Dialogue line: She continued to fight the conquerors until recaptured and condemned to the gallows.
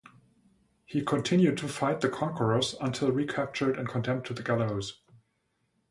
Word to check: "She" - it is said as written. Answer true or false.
false